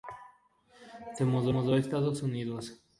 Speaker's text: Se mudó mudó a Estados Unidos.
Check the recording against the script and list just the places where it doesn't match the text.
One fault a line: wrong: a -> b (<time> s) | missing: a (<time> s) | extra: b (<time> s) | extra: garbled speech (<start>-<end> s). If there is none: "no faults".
no faults